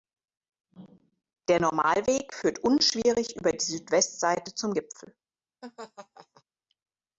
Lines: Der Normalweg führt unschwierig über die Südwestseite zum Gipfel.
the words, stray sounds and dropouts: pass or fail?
fail